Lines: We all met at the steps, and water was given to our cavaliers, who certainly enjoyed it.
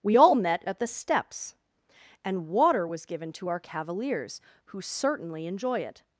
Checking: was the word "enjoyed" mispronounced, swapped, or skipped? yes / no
yes